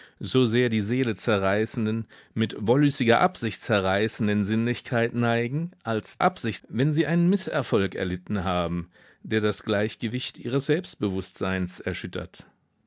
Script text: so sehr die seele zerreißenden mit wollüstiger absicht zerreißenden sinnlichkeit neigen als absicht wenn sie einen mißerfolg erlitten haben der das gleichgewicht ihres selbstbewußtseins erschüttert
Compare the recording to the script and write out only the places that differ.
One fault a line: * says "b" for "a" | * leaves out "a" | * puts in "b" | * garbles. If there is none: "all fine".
all fine